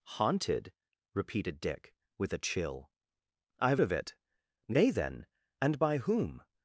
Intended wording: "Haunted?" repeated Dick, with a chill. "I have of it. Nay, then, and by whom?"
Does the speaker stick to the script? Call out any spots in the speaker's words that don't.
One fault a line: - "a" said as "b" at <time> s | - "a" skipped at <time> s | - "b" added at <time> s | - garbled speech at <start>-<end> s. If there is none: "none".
none